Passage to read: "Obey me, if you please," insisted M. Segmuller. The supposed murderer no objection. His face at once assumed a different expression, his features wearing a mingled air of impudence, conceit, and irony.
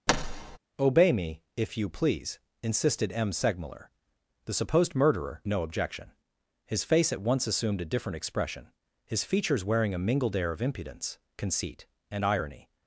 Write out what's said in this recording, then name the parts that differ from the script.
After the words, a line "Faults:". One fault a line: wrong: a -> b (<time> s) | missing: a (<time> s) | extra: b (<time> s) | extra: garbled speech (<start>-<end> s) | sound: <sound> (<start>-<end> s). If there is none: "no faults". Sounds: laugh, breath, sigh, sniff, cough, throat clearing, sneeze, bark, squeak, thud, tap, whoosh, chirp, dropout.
"Obey me, if you please," insisted M. Segmuller. The supposed murderer no objection. His face at once assumed a different expression, his features wearing a mingled air of impudence, conceit, and irony.
Faults:
sound: thud (0.1-0.6 s)